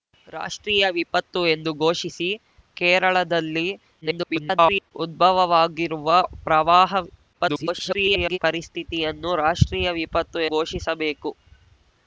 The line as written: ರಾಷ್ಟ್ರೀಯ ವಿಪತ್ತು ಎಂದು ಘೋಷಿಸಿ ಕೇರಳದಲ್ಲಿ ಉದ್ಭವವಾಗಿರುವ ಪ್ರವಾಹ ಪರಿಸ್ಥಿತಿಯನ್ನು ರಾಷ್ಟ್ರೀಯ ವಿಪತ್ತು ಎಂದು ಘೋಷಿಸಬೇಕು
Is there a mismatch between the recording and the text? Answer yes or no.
yes